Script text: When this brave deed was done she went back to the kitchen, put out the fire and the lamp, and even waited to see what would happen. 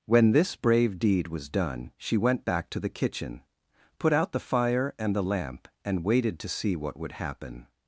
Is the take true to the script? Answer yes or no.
no